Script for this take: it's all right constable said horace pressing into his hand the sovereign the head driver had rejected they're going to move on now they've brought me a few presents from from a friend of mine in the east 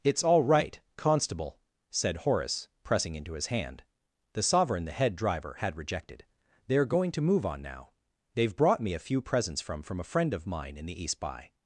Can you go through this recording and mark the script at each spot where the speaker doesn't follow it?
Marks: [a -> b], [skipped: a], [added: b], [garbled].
it's all right constable said horace pressing into his hand the sovereign the head driver had rejected they're going to move on now they've brought me a few presents from from a friend of mine in the east [added: by]